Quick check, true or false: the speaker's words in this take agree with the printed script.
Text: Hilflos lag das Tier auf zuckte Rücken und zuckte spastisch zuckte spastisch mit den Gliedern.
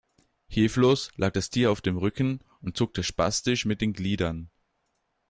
false